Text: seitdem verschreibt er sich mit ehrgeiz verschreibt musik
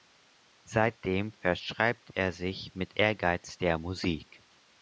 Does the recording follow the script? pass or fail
fail